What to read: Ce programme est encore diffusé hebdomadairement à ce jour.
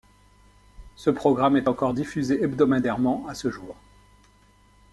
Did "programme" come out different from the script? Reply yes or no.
no